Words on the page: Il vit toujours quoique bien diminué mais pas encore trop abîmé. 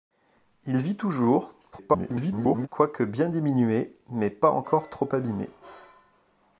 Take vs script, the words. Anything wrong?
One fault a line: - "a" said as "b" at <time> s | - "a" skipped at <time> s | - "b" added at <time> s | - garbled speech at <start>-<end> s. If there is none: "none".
- garbled speech at 1.7-2.7 s